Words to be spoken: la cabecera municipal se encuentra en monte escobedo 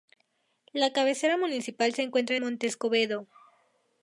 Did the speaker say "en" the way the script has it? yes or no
no